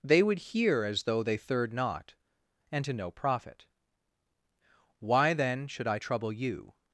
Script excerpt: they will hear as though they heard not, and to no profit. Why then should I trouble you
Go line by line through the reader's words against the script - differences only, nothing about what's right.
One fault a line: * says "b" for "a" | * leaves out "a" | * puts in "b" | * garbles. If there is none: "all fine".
* says "would" for "will"
* says "third" for "heard"